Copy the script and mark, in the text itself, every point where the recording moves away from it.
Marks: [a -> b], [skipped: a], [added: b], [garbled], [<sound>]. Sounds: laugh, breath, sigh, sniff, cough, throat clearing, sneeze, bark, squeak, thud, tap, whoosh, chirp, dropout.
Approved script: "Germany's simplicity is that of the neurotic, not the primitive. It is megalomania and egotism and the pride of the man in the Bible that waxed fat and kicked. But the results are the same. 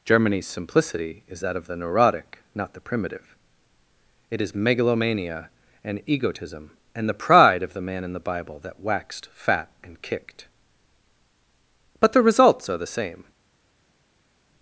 "Germany's simplicity is that of the neurotic, not the primitive. It is megalomania and egotism and the pride of the man in the Bible that waxed fat and kicked. But the results are the same.